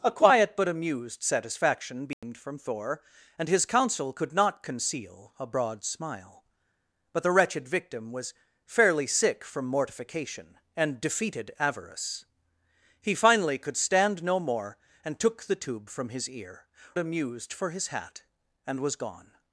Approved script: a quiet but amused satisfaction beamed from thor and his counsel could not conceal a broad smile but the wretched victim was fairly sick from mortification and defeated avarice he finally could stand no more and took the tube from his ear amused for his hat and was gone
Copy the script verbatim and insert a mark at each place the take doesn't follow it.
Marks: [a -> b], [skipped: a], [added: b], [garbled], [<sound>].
a quiet but amused satisfaction beamed [dropout] from thor and his counsel could not conceal a broad smile but the wretched victim was fairly sick from mortification and defeated avarice he finally could stand no more and took the tube from his ear amused for his hat and was gone